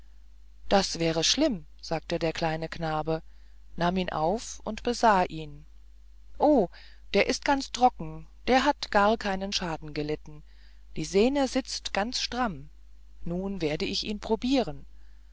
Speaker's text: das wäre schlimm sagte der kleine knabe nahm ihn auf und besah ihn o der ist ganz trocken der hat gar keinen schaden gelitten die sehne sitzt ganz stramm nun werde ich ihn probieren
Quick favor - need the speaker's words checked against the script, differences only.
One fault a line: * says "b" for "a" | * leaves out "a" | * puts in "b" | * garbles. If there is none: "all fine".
all fine